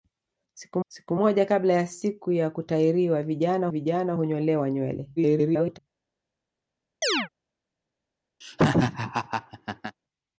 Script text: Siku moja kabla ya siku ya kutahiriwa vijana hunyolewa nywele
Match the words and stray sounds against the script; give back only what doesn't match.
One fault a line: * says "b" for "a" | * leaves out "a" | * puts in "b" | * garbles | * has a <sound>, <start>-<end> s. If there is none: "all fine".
* puts in "siku"
* puts in "vijana"
* garbles
* has a chirp, 7.0-7.3 s
* has a laugh, 8.4-10.0 s